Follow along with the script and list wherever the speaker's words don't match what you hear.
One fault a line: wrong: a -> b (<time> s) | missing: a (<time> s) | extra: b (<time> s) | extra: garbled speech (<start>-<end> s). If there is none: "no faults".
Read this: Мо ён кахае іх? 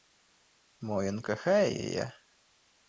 wrong: іх -> яе (1.8 s)